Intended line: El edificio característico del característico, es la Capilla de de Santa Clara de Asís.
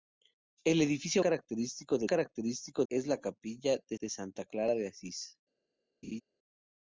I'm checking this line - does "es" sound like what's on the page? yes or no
yes